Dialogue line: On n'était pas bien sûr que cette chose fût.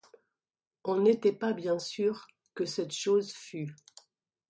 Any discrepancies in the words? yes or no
no